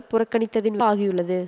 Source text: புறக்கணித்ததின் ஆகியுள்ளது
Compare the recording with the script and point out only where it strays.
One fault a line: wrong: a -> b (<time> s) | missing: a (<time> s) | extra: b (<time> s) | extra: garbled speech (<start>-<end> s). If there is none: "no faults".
no faults